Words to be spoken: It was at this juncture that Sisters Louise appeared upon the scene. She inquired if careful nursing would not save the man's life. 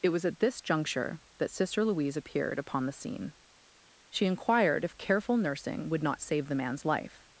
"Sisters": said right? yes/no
no